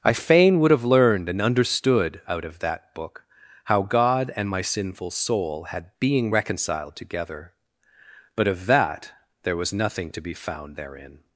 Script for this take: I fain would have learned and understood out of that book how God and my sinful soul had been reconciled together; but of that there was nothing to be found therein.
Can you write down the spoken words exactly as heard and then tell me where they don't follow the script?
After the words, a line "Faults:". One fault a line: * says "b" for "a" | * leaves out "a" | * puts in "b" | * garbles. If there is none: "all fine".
I fain would have learned and understood out of that book how God and my sinful soul had being reconciled together; but of that there was nothing to be found therein.
Faults:
* says "being" for "been"